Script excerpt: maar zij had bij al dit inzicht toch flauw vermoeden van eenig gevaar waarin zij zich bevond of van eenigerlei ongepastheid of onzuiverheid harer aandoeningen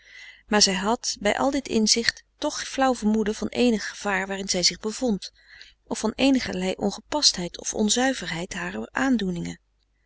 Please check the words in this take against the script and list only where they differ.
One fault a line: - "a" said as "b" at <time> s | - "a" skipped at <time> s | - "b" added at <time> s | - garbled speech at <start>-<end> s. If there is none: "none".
none